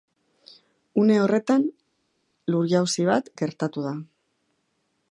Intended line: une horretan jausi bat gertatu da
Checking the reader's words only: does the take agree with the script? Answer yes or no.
no